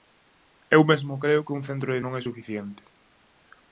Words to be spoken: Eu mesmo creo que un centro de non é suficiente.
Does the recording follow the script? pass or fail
pass